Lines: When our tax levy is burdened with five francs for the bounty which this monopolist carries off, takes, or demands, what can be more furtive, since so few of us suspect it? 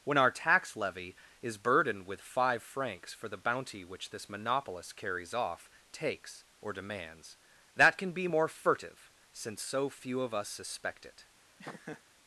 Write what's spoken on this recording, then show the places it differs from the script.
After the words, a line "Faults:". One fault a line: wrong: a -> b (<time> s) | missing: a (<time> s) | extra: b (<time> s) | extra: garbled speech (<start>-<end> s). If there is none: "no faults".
When our tax levy is burdened with five francs for the bounty which this monopolist carries off, takes, or demands, that can be more furtive, since so few of us suspect it?
Faults:
wrong: what -> that (7.8 s)